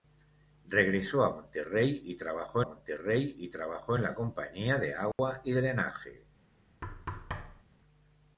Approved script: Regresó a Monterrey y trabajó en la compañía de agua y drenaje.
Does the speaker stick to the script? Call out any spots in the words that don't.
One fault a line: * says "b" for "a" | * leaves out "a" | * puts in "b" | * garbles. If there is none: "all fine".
* puts in "Monterrey y trabajó"